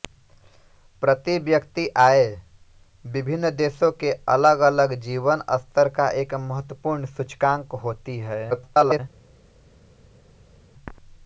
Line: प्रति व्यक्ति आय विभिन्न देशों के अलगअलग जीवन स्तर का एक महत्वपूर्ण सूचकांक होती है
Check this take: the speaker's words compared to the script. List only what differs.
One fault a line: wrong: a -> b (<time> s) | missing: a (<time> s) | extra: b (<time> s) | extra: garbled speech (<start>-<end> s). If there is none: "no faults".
extra: garbled speech (8.5-9.0 s)